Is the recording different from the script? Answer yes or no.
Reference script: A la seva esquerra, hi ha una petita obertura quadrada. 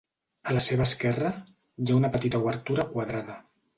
no